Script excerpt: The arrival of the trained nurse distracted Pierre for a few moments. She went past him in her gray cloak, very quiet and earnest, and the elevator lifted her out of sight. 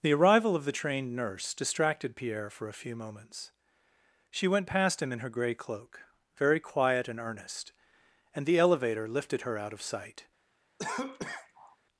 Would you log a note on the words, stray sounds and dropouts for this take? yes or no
yes